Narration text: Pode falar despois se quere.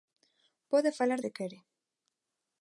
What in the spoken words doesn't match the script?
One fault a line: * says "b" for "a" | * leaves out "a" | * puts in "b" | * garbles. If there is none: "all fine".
* leaves out "despois"